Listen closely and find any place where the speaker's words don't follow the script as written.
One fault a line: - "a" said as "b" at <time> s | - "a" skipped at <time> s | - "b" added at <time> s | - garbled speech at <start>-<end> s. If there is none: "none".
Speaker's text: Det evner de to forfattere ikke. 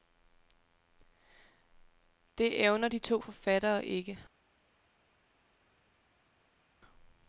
none